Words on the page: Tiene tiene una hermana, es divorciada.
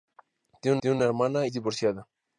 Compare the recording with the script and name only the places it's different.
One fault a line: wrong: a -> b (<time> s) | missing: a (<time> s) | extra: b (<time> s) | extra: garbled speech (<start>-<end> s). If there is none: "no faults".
no faults